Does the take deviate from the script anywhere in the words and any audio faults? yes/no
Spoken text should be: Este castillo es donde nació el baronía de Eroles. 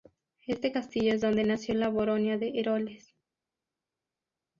yes